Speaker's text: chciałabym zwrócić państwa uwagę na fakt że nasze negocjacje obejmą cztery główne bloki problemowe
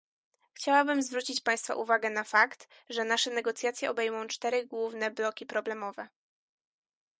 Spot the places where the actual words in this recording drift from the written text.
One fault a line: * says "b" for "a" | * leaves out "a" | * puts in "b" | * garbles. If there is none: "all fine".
all fine